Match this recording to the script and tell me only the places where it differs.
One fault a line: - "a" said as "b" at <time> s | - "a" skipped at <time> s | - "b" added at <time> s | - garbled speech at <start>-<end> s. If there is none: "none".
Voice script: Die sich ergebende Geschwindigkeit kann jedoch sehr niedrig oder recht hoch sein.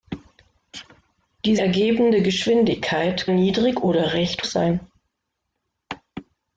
- "sich" skipped at 1.6 s
- "kann jedoch sehr" skipped at 3.3 s
- "hoch" skipped at 4.4 s